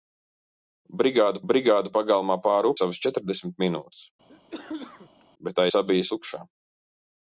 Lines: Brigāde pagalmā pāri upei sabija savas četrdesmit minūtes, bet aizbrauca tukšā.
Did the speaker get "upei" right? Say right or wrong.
wrong